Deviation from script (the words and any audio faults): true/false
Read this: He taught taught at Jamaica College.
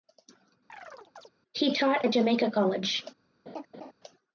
true